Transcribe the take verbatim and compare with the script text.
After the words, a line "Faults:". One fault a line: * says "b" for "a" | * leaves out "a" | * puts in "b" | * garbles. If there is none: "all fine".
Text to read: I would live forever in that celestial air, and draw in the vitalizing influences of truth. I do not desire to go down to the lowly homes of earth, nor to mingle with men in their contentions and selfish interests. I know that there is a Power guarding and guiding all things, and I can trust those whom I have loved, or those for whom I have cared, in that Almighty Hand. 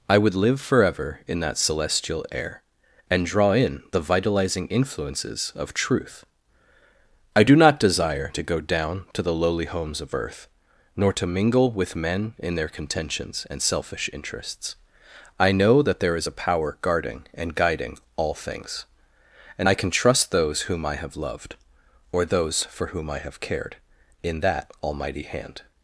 I would live forever in that celestial air, and draw in the vitalizing influences of truth. I do not desire to go down to the lowly homes of earth, nor to mingle with men in their contentions and selfish interests. I know that there is a Power guarding and guiding all things, and I can trust those whom I have loved, or those for whom I have cared, in that Almighty Hand.
Faults:
all fine